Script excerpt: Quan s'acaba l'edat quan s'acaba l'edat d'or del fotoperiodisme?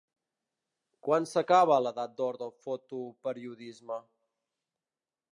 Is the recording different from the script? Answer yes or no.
yes